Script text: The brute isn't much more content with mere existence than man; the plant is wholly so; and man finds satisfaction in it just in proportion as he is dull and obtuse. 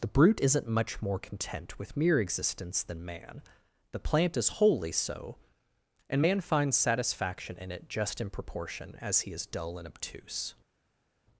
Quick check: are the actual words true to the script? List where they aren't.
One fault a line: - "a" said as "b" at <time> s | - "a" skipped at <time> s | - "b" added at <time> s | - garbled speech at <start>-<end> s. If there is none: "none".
none